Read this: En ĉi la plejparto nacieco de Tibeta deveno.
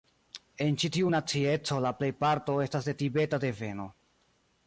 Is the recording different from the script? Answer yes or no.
yes